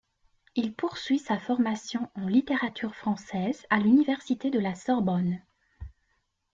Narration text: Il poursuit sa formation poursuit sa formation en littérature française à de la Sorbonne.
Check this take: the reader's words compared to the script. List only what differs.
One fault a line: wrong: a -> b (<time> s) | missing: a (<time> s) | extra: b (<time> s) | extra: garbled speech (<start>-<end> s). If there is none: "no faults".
missing: poursuit sa formation (2.1 s)
extra: l'université (3.8 s)